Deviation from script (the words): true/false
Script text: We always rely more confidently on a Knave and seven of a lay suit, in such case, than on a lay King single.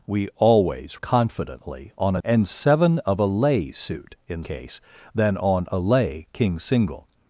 true